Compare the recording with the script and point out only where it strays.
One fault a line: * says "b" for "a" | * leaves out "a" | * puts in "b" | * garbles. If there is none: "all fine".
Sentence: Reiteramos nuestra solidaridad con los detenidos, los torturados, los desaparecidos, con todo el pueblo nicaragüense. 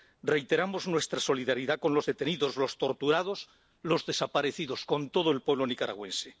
all fine